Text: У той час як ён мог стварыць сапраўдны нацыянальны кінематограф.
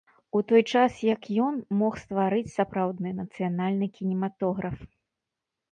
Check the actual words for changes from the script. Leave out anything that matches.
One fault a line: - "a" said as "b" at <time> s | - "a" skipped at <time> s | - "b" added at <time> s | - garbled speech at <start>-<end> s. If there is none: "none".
none